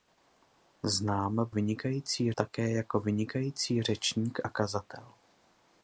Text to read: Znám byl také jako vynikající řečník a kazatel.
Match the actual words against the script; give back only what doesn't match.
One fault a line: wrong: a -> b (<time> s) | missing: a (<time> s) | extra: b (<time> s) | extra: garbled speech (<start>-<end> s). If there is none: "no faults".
wrong: byl -> vynikající (1.5 s)